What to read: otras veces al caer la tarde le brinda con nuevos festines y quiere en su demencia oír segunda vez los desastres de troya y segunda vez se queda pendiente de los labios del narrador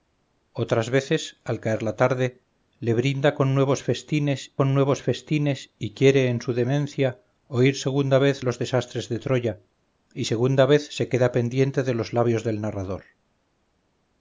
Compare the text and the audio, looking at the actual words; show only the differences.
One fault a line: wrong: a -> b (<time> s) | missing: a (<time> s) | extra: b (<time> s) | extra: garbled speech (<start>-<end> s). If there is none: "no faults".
extra: con nuevos festines (4.5 s)